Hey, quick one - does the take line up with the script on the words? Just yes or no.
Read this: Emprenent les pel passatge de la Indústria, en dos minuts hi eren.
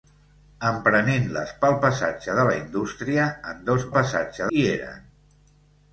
no